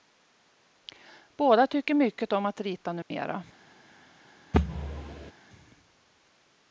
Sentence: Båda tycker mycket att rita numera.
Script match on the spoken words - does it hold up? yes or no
no